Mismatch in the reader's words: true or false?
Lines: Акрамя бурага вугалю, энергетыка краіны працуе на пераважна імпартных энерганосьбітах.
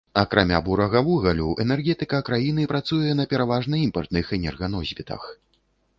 false